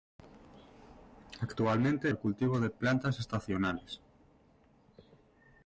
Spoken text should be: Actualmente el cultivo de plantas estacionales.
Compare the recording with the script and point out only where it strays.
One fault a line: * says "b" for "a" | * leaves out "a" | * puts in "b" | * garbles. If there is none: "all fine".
all fine